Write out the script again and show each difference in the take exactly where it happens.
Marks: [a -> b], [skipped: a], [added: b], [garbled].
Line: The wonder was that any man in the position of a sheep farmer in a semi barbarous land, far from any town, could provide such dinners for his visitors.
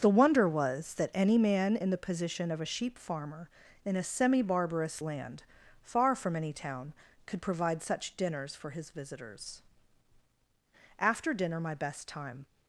The wonder was that any man in the position of a sheep farmer in a semi barbarous land, far from any town, could provide such dinners for his visitors. [added: After dinner my best time]